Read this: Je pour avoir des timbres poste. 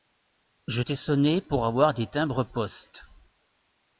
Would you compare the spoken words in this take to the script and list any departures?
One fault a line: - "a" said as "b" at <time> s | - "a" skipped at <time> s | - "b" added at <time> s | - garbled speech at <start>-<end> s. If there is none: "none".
- "t'ai sonné" added at 0.8 s